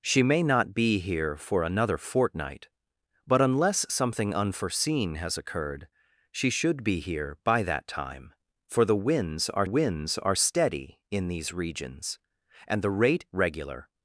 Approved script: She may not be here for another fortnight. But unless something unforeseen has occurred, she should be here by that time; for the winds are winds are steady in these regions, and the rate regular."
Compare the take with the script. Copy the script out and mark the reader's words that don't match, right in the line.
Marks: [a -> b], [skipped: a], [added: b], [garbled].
She may not be here for another fortnight. But unless something unforeseen has occurred, she should be here by that time; for the winds are winds are steady in these regions, and the rate regular."